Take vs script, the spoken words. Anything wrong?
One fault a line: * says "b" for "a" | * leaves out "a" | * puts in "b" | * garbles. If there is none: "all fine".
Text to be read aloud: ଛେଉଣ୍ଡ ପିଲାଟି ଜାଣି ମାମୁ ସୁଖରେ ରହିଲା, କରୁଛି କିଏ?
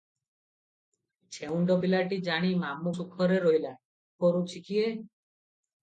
all fine